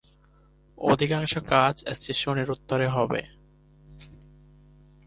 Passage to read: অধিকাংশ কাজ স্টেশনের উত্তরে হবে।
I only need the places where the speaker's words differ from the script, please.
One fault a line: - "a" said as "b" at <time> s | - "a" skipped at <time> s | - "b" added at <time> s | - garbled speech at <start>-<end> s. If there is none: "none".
none